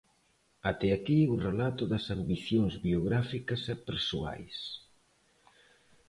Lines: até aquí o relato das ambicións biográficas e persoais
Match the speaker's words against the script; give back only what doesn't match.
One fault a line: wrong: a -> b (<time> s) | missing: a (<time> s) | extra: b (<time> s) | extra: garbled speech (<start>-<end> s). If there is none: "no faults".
no faults